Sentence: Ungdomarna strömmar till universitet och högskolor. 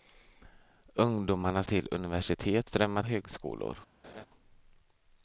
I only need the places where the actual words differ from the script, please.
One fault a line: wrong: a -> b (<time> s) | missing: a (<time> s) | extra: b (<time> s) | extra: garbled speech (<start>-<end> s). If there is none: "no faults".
missing: strömmar (1.6 s)
wrong: och -> strömmar (2.6 s)